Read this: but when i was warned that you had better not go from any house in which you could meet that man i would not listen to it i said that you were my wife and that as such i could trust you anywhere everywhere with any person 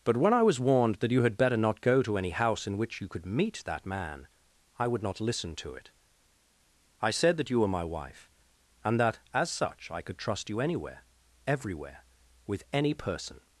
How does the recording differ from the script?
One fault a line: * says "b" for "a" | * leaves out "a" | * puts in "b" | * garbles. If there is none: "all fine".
* says "to" for "from"